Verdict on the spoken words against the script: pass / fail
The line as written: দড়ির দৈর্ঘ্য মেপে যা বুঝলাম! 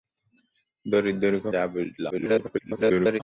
fail